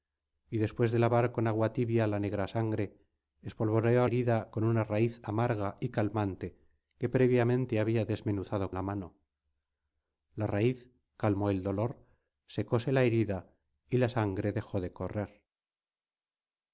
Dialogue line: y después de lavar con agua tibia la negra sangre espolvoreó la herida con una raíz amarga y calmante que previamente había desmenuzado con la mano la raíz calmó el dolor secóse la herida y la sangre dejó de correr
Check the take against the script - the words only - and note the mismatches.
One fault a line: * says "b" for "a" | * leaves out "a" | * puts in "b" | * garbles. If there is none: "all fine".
* leaves out "la"
* leaves out "con"